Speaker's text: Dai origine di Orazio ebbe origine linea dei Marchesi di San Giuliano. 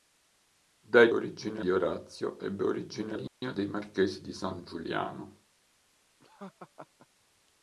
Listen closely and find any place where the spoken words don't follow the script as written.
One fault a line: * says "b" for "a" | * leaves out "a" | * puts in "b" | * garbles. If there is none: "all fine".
all fine